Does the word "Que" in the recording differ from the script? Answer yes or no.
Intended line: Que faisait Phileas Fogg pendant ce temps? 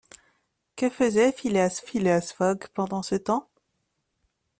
no